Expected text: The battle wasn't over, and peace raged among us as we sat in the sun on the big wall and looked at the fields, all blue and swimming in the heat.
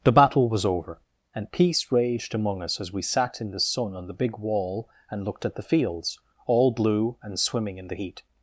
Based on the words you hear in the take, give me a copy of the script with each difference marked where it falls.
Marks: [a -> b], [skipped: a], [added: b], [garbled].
The battle [wasn't -> was] over, and peace raged among us as we sat in the sun on the big wall and looked at the fields, all blue and swimming in the heat.